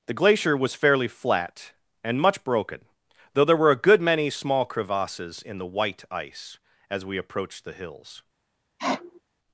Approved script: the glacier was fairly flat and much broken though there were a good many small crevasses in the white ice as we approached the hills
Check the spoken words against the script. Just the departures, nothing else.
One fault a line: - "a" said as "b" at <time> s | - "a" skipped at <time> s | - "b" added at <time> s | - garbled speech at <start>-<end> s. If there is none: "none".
none